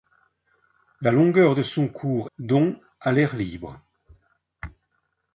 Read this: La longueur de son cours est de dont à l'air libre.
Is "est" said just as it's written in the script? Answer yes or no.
no